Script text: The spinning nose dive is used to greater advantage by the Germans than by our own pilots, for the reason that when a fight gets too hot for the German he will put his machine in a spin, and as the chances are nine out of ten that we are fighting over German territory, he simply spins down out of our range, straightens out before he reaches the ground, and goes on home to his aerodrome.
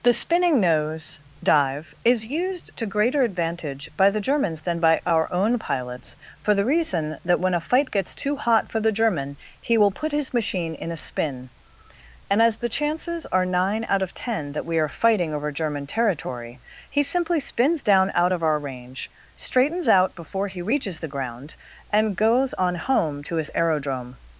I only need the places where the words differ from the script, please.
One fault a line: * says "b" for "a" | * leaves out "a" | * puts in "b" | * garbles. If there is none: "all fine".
all fine